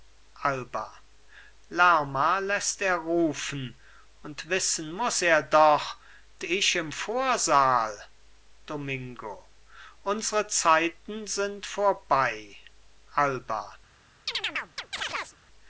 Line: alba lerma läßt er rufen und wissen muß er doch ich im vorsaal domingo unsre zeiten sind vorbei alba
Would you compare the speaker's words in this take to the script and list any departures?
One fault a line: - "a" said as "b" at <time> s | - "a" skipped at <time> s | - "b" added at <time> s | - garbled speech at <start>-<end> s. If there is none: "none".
none